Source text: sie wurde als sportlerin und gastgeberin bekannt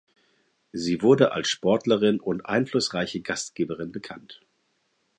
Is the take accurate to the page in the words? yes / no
no